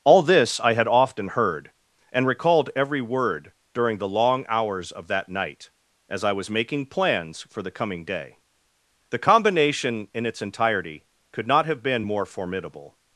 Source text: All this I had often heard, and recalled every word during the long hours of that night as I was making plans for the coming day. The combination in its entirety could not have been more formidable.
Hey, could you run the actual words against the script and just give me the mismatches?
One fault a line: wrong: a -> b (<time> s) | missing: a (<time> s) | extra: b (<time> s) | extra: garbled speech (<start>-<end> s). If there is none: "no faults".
no faults